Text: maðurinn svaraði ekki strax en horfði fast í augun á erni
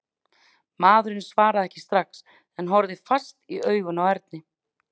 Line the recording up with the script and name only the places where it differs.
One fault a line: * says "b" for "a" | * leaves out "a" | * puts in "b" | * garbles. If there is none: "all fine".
all fine